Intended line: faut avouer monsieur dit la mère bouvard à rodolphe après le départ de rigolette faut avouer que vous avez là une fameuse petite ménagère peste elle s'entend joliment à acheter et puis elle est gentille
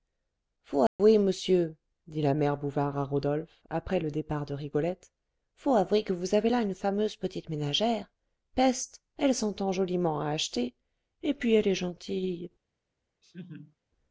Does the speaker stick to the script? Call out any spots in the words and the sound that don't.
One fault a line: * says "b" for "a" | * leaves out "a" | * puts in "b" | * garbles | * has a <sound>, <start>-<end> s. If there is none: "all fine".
* has a dropout, 0.9-1.0 s
* has a laugh, 13.2-13.8 s